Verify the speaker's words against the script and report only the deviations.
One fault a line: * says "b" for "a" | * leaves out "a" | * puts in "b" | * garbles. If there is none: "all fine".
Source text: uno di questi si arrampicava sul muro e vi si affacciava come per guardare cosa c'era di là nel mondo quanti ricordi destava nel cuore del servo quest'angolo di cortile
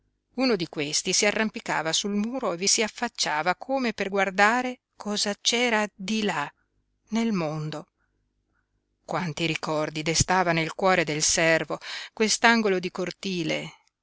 all fine